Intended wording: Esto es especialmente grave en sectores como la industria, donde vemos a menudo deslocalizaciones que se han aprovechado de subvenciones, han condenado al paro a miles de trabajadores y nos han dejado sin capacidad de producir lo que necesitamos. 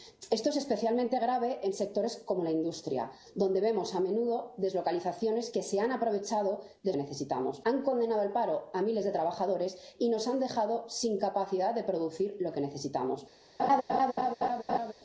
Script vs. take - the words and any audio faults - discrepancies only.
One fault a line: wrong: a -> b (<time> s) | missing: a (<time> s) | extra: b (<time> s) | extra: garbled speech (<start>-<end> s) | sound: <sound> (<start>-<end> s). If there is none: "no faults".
wrong: subvenciones -> necesitamos (7.0 s)
sound: laugh (13.6-14.9 s)